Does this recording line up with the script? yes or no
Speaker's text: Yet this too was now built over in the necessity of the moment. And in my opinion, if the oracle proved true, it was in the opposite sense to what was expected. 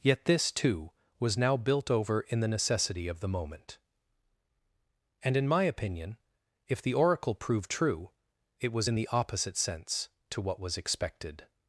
yes